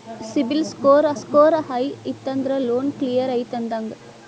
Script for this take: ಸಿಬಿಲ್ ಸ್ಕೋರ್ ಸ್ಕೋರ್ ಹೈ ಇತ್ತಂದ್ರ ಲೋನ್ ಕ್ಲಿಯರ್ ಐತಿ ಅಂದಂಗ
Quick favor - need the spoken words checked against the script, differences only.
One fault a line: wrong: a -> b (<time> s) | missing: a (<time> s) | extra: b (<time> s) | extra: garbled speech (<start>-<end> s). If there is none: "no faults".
no faults